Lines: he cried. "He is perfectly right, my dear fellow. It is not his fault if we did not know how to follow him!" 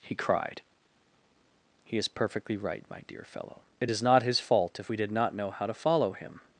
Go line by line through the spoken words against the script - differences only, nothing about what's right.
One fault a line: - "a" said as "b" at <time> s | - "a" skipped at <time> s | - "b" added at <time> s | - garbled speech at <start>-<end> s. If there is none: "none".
none